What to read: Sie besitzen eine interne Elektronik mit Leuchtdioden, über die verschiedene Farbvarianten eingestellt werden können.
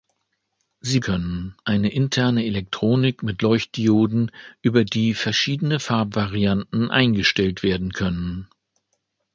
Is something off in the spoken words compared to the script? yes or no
yes